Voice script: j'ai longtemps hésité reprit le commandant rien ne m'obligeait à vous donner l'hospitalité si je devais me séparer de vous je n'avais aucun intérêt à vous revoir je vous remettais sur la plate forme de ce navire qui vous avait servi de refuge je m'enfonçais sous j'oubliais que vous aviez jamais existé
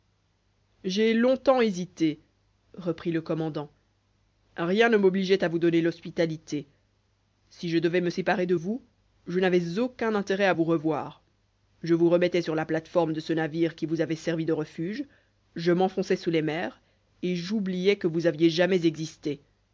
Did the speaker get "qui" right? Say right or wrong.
right